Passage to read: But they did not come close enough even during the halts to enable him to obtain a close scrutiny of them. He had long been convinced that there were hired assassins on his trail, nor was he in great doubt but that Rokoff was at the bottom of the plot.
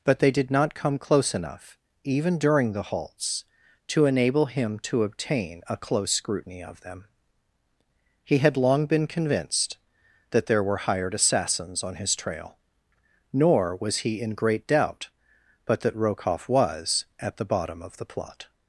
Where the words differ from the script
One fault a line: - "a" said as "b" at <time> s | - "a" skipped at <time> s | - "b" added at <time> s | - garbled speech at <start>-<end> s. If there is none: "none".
none